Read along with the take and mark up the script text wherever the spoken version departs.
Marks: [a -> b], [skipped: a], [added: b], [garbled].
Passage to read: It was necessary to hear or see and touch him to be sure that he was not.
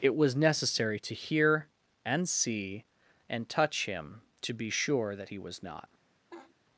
It was necessary to hear [or -> and] see and touch him to be sure that he was not.